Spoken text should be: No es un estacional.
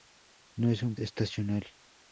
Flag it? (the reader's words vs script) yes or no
no